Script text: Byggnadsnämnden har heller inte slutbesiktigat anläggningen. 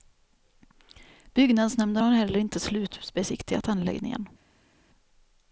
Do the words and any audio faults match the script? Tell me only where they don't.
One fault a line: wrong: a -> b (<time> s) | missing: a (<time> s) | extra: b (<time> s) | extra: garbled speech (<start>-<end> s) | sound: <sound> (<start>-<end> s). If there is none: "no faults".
no faults